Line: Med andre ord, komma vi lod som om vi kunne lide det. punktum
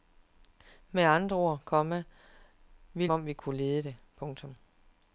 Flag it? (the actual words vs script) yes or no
yes